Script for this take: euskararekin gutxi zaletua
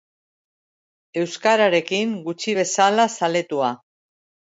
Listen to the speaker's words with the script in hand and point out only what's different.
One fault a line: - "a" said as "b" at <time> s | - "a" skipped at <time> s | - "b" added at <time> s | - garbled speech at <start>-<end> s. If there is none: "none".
- "bezala" added at 2.6 s